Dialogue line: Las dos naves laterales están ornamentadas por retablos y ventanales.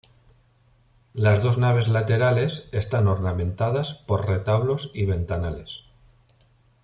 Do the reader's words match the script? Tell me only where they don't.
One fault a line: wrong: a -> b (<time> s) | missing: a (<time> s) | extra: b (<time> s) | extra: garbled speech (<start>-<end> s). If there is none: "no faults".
no faults